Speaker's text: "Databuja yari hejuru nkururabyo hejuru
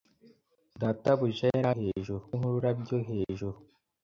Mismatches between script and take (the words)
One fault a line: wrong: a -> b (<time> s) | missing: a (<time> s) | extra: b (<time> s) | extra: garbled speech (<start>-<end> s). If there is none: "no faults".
no faults